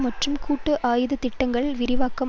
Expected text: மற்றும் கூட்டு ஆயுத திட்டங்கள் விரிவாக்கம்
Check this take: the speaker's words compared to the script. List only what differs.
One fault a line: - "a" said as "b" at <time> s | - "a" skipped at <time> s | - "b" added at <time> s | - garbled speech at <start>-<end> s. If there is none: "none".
none